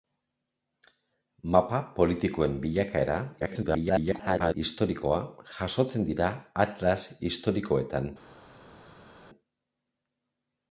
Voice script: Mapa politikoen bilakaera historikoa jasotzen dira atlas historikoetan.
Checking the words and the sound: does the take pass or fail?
fail